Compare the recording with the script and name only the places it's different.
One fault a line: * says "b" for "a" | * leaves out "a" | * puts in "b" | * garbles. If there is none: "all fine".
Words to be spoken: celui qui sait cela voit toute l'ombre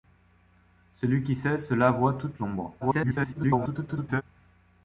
* garbles